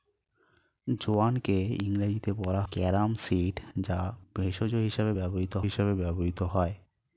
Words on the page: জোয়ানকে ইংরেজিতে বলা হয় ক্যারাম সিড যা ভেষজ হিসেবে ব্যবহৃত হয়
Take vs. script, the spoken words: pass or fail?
fail